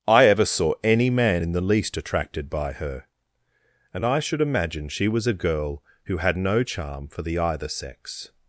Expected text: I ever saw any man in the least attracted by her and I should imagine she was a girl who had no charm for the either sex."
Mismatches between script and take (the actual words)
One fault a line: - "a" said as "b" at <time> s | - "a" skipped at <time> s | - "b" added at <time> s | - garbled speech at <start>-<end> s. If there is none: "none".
none